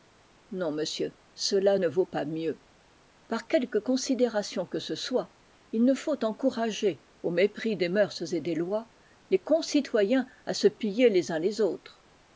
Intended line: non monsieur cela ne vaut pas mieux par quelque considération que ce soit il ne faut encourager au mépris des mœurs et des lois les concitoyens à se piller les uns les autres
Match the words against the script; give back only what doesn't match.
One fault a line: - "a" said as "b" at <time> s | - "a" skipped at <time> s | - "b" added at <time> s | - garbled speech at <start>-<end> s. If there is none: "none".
none